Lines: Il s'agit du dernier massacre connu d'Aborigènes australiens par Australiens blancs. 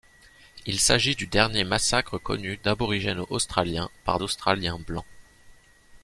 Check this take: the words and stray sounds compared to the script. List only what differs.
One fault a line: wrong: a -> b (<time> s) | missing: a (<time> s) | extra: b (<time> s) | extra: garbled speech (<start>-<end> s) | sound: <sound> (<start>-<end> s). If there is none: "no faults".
no faults